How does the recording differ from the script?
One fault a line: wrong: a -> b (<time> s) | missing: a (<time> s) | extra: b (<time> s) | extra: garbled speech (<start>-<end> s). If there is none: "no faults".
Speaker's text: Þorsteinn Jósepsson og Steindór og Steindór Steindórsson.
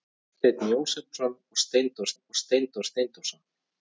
no faults